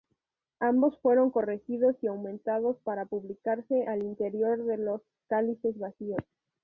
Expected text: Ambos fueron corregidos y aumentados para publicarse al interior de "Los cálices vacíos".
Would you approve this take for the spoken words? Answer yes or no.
yes